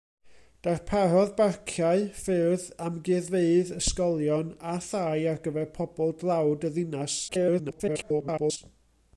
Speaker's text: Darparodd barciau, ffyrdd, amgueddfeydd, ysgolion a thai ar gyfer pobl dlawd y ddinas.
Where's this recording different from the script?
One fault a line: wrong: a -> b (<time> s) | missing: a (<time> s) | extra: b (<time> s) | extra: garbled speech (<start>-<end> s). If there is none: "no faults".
extra: garbled speech (7.3-8.6 s)